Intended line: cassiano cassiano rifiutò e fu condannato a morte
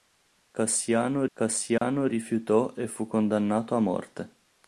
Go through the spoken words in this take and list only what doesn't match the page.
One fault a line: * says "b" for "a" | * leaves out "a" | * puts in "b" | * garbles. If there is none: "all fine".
all fine